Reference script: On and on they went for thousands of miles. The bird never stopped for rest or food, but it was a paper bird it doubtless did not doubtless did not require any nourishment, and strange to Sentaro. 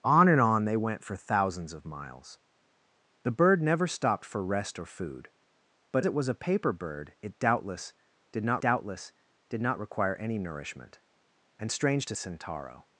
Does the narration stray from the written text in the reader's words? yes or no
no